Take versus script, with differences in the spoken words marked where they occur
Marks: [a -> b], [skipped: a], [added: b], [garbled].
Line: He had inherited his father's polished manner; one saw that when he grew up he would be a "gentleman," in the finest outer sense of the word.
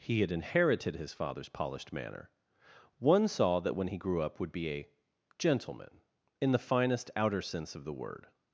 He had inherited his father's polished manner; one saw that when he grew up [skipped: he] would be a "gentleman," in the finest outer sense of the word.